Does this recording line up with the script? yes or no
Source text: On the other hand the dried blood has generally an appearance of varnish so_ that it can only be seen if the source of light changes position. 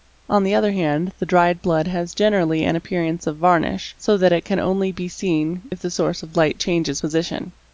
yes